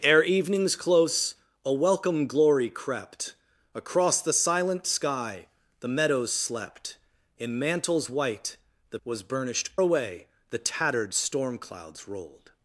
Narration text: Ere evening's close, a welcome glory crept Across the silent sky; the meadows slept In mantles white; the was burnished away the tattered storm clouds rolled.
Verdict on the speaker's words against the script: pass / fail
pass